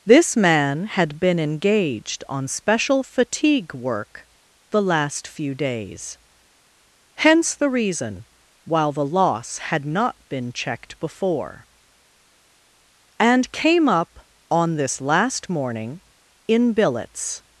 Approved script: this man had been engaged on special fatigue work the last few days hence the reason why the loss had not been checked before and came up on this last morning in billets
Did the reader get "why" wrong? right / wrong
wrong